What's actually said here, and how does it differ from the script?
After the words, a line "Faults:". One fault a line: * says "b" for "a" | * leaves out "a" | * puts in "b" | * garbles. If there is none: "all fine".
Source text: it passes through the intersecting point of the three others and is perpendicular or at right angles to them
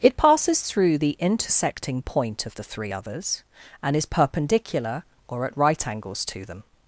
it passes through the intersecting point of the three others and is perpendicular or at right angles to them
Faults:
all fine